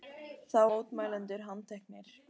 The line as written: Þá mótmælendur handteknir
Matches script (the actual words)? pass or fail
pass